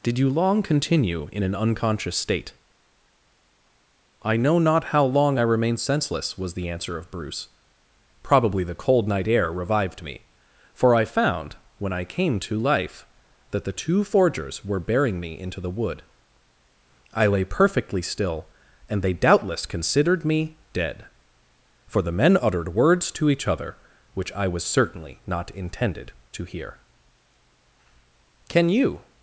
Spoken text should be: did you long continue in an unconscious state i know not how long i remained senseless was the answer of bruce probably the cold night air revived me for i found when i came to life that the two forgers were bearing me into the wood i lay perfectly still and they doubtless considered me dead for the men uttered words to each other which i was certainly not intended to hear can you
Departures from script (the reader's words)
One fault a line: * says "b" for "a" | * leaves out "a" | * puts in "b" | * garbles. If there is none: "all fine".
all fine